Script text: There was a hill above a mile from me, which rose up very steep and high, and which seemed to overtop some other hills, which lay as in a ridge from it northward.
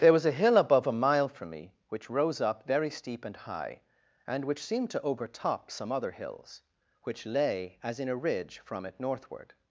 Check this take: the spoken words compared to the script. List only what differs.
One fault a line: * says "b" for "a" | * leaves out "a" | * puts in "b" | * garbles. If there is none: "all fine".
all fine